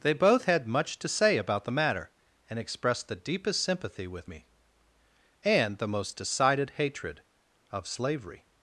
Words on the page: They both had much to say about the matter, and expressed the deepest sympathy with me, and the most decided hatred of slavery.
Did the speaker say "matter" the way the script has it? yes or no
yes